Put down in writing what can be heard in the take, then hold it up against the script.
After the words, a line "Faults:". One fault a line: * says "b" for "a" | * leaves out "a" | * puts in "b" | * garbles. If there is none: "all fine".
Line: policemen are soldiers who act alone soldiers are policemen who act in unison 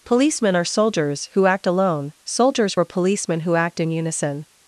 policemen are soldiers who act alone soldiers were policemen who act in unison
Faults:
* says "were" for "are"